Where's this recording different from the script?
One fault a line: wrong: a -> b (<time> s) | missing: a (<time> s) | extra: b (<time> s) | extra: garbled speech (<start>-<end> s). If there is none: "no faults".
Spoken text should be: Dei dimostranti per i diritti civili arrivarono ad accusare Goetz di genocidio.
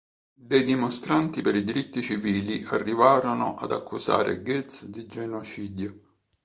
no faults